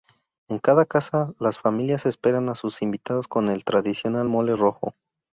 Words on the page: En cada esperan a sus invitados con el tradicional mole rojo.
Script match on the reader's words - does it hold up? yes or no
no